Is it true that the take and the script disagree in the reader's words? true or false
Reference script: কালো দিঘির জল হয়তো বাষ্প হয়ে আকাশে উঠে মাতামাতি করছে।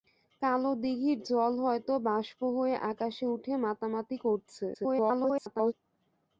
true